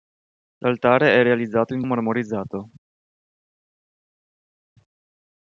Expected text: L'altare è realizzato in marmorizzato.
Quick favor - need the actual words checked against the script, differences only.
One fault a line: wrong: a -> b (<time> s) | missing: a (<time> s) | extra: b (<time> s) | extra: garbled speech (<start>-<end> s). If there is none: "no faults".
no faults